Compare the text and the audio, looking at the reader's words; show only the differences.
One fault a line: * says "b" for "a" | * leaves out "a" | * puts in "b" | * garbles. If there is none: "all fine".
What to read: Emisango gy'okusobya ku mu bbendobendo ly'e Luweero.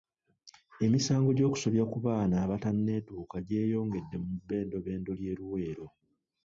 * puts in "baana abatanneetuuka gyeyongedde"